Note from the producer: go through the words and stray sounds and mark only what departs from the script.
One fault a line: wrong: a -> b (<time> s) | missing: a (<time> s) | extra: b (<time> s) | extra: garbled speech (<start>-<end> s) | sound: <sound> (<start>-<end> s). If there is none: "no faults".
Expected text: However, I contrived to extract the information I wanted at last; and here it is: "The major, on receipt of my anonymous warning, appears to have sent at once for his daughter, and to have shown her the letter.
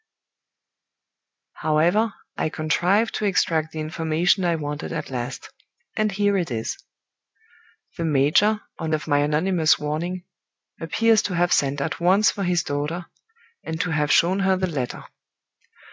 missing: receipt (8.9 s)